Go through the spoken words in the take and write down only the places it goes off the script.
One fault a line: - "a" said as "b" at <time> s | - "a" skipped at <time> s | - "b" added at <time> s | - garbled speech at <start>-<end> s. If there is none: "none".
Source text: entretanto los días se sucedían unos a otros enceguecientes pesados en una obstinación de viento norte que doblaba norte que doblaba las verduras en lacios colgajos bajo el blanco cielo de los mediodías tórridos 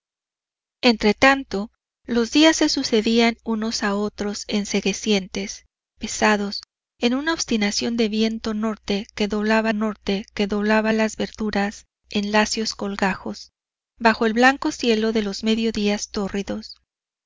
none